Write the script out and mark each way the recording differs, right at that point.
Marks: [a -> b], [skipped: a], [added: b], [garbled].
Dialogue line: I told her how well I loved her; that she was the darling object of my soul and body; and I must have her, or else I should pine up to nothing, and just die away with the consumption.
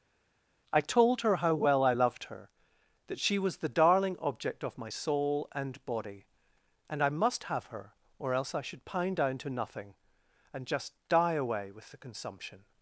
I told her how well I loved her; that she was the darling object of my soul and body; and I must have her, or else I should pine [up -> down] to nothing, and just die away with the consumption.